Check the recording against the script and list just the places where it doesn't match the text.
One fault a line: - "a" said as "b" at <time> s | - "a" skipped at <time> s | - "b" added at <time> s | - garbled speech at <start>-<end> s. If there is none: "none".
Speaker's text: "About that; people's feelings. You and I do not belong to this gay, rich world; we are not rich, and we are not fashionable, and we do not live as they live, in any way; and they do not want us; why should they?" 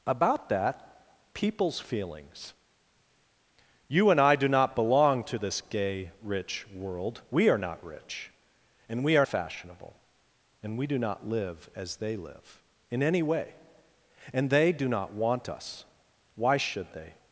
- "not" skipped at 9.2 s